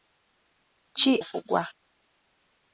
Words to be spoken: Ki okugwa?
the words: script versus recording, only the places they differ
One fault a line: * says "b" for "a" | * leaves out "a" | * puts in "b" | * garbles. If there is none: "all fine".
all fine